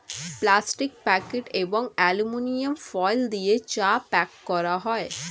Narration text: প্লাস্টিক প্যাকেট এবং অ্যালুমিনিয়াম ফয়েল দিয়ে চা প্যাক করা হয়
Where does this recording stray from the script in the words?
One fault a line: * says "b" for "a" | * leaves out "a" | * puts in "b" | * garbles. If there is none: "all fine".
all fine